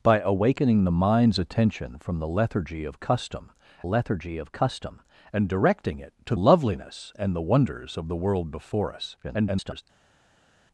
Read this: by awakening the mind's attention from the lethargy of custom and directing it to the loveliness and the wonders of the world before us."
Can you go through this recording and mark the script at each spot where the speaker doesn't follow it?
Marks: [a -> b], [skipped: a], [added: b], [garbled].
by awakening the mind's attention from the lethargy of custom [added: lethargy of custom] and directing it to [skipped: the] loveliness and the wonders of the world before us." [garbled]